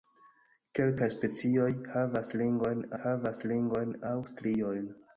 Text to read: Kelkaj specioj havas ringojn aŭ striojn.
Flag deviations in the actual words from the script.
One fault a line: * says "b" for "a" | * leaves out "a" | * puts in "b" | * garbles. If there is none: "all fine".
* puts in "havas ringojn"